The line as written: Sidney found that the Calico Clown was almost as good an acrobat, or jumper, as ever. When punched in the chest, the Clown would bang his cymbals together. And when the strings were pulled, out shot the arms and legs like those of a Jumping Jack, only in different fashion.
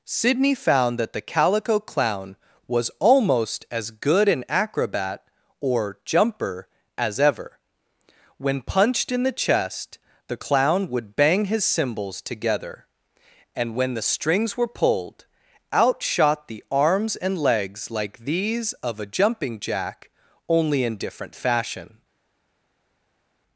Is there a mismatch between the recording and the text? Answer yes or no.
yes